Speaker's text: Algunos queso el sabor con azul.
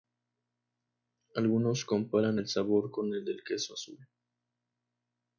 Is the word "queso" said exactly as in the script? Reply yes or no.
no